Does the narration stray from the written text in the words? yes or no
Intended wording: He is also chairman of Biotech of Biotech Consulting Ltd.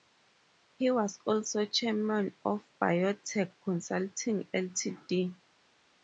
yes